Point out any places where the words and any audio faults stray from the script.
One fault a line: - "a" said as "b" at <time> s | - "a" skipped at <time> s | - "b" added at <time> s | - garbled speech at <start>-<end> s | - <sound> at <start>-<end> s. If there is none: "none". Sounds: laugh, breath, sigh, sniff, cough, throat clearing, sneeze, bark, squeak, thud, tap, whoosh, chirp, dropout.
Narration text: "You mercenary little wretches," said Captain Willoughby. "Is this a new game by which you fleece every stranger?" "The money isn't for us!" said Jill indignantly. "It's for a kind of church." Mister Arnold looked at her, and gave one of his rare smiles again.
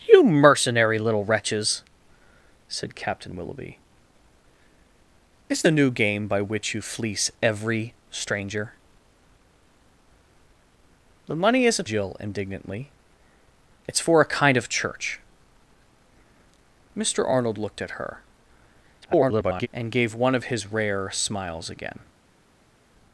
- "this" skipped at 5.6 s
- "for us said" skipped at 11.9 s
- garbled speech at 19.0-19.7 s